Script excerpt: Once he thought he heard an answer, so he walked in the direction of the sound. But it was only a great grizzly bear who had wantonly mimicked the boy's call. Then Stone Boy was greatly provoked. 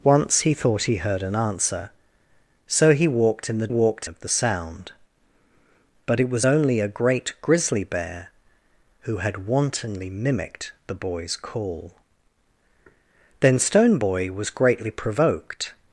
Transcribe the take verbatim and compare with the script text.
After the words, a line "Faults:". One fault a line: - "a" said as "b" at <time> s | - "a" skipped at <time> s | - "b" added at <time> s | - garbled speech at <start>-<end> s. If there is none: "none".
Once he thought he heard an answer, so he walked in the walked of the sound. But it was only a great grizzly bear who had wantonly mimicked the boy's call. Then Stone Boy was greatly provoked.
Faults:
- "direction" said as "walked" at 3.7 s